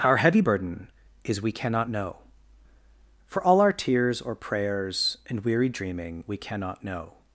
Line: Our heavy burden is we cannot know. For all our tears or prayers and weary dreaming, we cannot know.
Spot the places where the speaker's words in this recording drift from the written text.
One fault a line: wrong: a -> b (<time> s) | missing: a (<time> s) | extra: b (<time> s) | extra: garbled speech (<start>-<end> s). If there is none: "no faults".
no faults